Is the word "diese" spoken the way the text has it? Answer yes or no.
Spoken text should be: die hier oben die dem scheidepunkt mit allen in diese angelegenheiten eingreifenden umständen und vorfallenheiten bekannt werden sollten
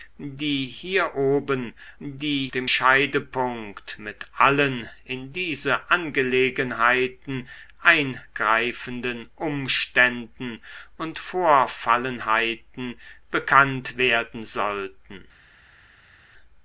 yes